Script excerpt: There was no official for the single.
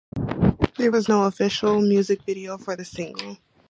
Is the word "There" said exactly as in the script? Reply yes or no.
yes